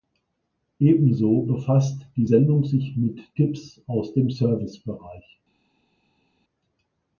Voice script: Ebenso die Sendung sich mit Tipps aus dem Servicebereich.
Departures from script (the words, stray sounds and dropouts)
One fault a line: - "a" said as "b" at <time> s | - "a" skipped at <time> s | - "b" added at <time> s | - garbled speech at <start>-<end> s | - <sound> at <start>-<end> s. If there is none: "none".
- "befasst" added at 1.4 s